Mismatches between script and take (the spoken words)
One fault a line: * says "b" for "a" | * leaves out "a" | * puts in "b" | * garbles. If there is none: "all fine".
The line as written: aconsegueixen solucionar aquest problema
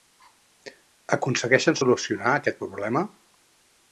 all fine